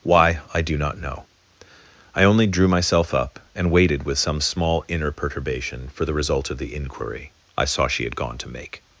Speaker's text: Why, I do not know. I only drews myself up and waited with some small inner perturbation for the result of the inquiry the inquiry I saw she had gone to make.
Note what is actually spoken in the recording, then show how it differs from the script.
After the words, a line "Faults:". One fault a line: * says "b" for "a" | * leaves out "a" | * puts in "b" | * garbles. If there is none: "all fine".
Why, I do not know. I only drew myself up and waited with some small inner perturbation for the result of the inquiry I saw she had gone to make.
Faults:
* says "drew" for "drews"
* leaves out "the inquiry"